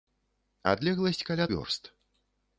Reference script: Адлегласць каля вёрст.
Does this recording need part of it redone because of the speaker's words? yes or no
no